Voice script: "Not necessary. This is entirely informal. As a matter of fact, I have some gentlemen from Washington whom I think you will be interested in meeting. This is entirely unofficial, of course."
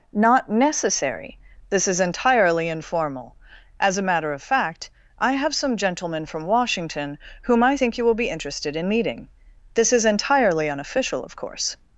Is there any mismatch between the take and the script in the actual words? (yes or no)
no